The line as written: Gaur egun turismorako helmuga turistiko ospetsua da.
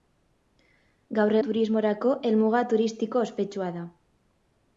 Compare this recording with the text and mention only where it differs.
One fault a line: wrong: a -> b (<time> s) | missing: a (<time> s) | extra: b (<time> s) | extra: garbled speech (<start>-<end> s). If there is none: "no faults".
missing: egun (1.4 s)